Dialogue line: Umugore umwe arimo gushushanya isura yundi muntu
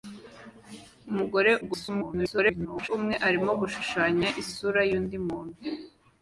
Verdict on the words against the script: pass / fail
fail